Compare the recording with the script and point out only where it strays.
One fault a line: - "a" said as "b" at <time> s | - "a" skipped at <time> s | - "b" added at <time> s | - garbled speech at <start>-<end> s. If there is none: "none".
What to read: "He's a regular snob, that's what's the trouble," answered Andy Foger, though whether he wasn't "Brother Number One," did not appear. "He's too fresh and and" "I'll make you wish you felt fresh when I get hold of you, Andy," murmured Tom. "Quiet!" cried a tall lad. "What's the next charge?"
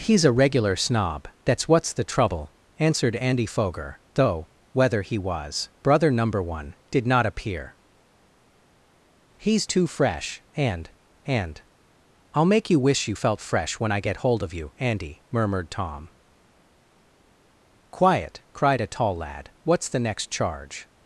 - "wasn't" said as "was" at 5.2 s